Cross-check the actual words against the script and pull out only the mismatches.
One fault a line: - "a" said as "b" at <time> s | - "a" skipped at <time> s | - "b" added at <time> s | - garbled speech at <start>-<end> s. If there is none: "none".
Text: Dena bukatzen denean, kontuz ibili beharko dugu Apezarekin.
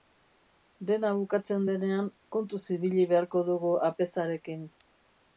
none